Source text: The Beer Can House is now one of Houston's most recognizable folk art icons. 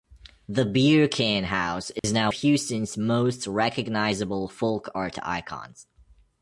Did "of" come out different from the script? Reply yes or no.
yes